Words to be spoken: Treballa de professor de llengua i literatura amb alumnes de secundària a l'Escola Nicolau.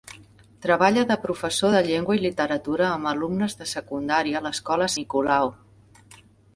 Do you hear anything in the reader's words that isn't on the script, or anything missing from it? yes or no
no